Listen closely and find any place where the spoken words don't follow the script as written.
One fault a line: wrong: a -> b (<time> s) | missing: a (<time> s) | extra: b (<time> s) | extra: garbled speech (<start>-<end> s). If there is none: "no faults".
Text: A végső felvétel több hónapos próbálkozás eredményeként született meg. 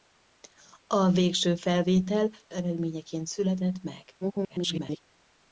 missing: több hónapos próbálkozás (2.3 s)
extra: garbled speech (4.2-5.0 s)